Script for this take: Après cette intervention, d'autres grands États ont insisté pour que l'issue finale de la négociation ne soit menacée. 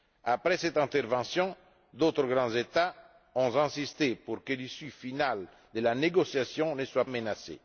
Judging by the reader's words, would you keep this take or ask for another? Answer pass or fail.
pass